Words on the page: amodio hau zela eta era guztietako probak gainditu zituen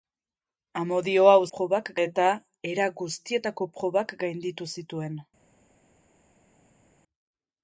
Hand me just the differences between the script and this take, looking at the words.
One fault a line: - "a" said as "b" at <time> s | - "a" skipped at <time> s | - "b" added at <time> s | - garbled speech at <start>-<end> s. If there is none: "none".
- "zela" said as "probak" at 1.6 s